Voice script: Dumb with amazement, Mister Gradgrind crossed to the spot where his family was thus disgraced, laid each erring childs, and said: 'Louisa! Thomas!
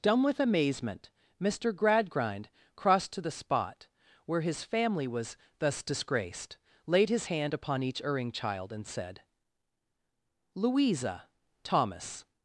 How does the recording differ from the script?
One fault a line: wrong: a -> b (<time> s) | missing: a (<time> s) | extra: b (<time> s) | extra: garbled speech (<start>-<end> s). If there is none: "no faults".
extra: his hand upon (7.1 s)
wrong: childs -> child (8.3 s)